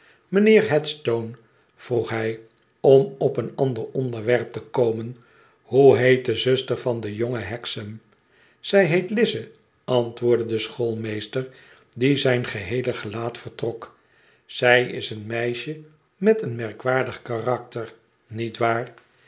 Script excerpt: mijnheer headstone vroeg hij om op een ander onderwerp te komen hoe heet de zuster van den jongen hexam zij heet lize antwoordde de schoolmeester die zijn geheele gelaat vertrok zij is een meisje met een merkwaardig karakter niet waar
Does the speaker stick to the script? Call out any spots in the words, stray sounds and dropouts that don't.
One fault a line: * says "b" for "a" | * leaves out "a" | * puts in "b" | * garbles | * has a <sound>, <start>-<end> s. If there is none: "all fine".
all fine